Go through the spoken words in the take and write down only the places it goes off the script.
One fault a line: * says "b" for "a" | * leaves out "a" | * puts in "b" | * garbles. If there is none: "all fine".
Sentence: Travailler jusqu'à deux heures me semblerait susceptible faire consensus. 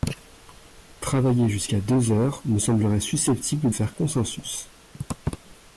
all fine